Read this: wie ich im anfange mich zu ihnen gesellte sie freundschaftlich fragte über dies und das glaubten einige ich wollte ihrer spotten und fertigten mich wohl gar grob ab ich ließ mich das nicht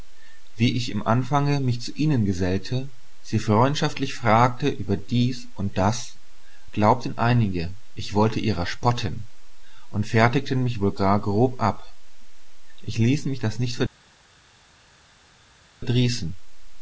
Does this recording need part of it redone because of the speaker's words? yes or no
no